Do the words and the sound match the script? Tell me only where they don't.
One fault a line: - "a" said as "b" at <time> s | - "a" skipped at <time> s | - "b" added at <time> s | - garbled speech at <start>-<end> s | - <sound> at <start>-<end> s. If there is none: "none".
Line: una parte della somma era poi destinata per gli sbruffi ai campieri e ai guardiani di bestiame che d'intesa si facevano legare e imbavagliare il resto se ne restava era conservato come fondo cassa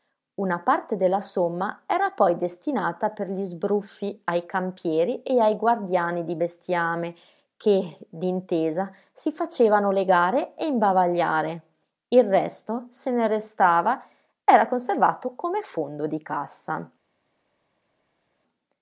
- "di" added at 16.1 s